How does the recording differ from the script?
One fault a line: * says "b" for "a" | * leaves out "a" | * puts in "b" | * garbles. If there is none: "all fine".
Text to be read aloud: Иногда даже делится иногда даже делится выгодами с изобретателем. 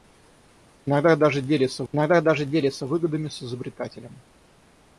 all fine